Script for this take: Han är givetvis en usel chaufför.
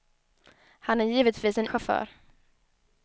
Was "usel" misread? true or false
true